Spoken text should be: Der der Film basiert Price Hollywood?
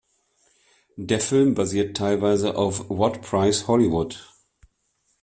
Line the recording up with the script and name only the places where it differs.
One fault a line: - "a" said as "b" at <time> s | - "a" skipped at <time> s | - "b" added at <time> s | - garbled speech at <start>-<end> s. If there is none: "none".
- "der" skipped at 1.2 s
- "teilweise auf What" added at 1.9 s